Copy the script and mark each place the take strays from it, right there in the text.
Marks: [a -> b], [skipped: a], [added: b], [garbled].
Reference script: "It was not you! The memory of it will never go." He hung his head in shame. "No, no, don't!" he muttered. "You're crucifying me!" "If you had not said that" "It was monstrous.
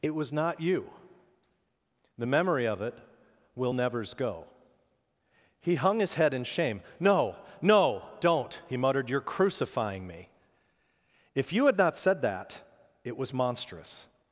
"It was not you! The memory of it will [never -> nevers] go." He hung his head in shame. "No, no, don't!" he muttered. "You're crucifying me!" "If you had not said that" "It was monstrous.